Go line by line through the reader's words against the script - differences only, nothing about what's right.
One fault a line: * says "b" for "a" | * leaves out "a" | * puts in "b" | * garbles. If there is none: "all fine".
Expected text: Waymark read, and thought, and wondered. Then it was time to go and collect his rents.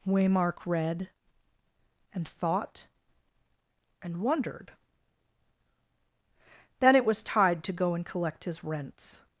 * says "tide" for "time"